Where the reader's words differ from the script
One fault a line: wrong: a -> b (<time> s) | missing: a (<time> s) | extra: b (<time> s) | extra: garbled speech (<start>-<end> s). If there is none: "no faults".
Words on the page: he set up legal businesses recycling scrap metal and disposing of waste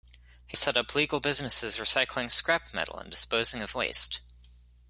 no faults